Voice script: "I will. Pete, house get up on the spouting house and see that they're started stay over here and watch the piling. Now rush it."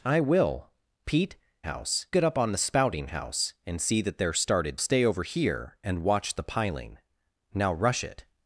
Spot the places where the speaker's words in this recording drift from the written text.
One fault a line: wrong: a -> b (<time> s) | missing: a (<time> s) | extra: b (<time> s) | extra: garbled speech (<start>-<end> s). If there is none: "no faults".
no faults